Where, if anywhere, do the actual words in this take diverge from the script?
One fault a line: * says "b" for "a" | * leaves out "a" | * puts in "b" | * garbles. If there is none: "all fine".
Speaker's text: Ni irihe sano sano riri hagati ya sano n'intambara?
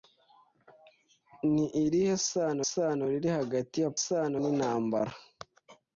all fine